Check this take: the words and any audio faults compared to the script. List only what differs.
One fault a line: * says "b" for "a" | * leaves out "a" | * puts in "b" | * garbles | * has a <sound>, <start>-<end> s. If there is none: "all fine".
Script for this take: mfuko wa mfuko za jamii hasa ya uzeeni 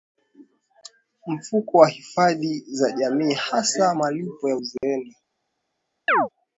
* says "hifadhi" for "mfuko"
* puts in "malipo"
* has a dropout, 4.8-4.8 s
* has a chirp, 6.1-6.3 s